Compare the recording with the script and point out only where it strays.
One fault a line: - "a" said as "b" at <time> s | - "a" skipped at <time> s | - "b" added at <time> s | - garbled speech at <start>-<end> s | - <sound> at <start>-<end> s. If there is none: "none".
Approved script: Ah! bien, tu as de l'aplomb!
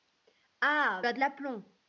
- "bien tu" skipped at 1.1 s